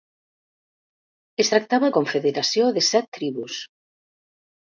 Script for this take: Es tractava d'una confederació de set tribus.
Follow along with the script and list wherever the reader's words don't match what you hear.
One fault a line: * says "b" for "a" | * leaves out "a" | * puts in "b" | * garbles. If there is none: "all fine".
* leaves out "d'una"